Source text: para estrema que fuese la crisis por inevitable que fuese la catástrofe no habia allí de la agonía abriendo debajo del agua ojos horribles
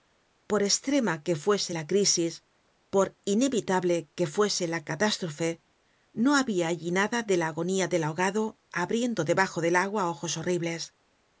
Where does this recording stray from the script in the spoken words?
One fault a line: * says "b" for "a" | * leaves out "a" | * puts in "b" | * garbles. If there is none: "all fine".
* says "por" for "para"
* puts in "nada"
* puts in "del ahogado"